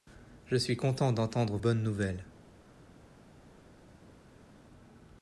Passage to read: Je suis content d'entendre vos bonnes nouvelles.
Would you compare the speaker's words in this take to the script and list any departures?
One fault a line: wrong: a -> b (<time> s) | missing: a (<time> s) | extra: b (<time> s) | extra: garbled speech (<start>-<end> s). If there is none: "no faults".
missing: vos (1.6 s)